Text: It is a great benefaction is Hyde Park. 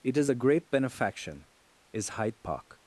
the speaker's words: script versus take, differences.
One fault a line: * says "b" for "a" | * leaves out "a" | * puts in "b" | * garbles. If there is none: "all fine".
all fine